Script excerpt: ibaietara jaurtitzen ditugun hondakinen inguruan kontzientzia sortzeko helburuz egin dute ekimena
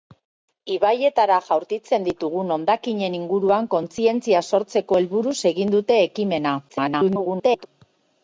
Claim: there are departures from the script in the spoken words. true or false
true